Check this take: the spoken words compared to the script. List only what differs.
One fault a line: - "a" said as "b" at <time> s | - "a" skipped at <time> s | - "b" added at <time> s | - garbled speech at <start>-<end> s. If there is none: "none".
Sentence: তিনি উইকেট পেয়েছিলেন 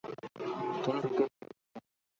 none